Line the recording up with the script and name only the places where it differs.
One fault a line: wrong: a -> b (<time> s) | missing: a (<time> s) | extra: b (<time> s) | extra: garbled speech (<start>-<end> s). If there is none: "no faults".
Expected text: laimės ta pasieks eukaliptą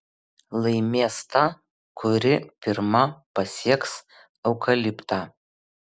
extra: kuri pirma (2.0 s)